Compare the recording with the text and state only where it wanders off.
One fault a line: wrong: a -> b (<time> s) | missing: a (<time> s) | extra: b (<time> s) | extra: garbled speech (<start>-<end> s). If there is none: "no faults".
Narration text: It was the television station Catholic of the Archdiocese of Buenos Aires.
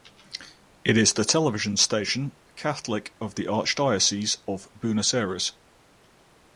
wrong: was -> is (1.0 s)